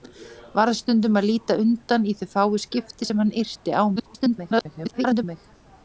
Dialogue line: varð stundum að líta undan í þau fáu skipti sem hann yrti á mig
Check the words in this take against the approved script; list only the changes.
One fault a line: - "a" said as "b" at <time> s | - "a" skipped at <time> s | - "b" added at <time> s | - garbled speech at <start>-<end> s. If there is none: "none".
- garbled speech at 4.0-5.2 s